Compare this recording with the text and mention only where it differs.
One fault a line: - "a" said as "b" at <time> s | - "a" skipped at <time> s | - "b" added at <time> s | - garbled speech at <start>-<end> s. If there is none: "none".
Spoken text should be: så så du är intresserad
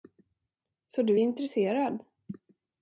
- "så" skipped at 1.0 s